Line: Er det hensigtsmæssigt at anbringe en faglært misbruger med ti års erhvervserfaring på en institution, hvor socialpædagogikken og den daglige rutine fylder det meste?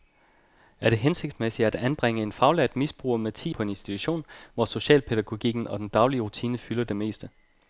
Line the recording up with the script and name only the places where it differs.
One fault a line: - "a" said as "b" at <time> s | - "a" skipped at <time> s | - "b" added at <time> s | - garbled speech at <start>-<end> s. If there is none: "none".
- "års erhvervserfaring" skipped at 3.5 s